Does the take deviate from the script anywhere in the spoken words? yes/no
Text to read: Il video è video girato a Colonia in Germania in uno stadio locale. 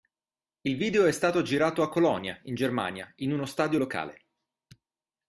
yes